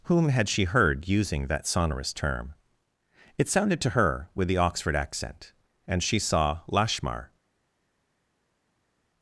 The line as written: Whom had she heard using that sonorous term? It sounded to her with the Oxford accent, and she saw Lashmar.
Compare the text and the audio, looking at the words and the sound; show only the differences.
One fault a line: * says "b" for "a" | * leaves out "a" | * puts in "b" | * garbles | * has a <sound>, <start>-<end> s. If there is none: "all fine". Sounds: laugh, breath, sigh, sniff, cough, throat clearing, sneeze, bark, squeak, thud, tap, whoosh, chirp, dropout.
all fine